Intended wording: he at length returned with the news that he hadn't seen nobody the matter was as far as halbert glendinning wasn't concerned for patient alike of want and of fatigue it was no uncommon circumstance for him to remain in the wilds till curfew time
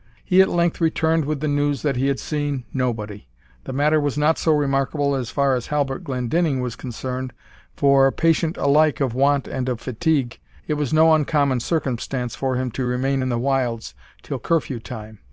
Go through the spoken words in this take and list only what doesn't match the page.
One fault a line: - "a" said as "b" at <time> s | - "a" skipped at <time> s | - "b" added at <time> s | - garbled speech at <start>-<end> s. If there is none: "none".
- "hadn't" said as "had" at 2.1 s
- "not so remarkable" added at 4.2 s
- "wasn't" said as "was" at 6.6 s